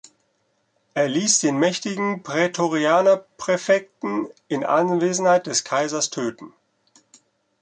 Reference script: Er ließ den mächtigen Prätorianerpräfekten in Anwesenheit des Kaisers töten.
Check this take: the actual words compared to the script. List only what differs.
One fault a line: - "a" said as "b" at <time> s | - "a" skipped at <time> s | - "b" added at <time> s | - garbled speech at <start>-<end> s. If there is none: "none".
none